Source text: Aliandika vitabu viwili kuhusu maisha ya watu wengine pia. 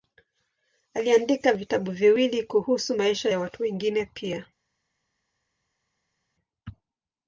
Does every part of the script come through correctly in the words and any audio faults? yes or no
yes